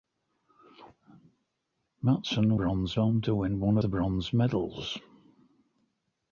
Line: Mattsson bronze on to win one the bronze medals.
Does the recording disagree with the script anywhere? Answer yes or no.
no